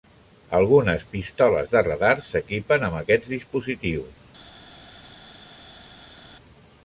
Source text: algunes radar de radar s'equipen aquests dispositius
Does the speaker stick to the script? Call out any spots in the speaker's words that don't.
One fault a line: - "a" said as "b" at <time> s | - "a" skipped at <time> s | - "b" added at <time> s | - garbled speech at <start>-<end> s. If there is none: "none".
- "radar" said as "pistoles" at 1.1 s
- "amb" added at 2.9 s